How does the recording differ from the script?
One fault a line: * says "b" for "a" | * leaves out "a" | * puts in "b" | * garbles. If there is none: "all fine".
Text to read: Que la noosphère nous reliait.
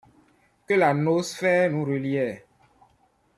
all fine